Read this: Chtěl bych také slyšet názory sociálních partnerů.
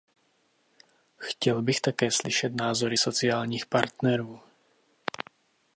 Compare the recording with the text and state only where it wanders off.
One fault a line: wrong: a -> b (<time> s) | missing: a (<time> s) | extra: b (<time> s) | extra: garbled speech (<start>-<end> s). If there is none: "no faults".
no faults